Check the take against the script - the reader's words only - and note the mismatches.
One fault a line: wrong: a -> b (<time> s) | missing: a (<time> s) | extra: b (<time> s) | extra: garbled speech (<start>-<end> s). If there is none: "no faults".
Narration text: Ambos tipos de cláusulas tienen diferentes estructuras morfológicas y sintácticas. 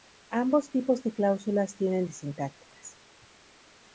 missing: diferentes estructuras morfológicas (2.1 s)